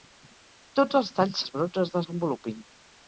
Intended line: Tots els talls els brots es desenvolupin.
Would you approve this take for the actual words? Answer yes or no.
yes